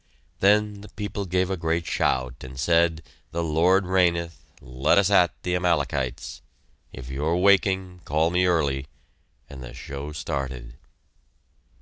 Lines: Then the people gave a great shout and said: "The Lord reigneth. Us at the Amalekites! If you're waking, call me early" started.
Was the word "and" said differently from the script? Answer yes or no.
no